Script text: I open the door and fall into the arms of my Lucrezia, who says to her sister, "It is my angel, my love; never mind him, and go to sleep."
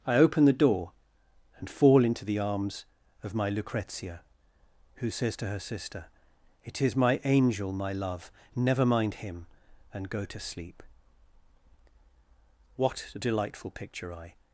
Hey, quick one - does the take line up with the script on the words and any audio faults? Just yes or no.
no